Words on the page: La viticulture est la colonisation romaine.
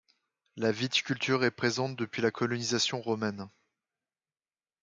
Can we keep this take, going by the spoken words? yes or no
no